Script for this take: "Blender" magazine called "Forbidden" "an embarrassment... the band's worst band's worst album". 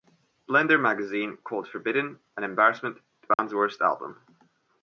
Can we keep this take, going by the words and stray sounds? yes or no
no